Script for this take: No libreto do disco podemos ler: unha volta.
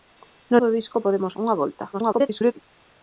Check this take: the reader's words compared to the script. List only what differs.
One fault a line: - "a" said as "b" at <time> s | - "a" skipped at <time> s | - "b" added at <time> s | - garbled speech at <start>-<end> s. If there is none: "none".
- "libreto" skipped at 0.6 s
- "ler" skipped at 1.3 s
- garbled speech at 1.9-2.6 s